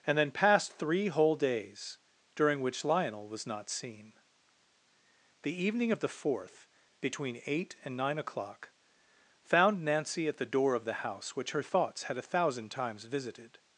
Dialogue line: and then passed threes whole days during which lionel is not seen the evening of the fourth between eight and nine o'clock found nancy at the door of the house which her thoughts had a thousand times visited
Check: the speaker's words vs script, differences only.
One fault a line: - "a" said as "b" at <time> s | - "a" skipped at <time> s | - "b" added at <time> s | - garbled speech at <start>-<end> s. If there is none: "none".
- "threes" said as "three" at 0.7 s
- "is" said as "was" at 3.3 s